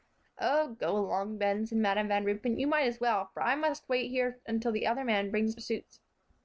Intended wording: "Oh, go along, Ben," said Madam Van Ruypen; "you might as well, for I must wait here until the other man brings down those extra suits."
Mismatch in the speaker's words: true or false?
true